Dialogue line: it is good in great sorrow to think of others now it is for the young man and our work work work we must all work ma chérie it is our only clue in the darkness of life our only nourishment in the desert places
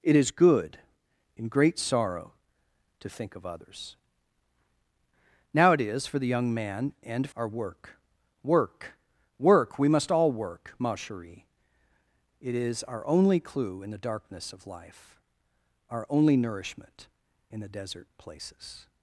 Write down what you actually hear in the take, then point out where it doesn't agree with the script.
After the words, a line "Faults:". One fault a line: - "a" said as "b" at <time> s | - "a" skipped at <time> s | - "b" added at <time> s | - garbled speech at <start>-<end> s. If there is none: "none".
it is good in great sorrow to think of others now it is for the young man and our work work work we must all work ma chérie it is our only clue in the darkness of life our only nourishment in the desert places
Faults:
none